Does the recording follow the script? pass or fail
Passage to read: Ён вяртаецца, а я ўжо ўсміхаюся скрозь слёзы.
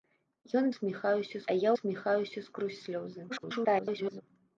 fail